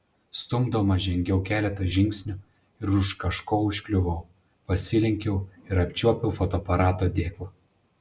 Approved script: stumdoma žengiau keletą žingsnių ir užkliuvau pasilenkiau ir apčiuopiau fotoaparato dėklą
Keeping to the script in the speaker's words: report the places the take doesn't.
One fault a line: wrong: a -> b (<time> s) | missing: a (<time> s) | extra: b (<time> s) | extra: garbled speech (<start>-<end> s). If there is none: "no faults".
extra: už kažko (3.0 s)